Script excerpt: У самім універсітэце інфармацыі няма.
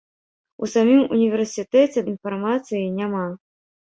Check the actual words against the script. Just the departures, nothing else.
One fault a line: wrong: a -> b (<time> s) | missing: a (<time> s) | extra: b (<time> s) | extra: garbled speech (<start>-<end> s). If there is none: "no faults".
no faults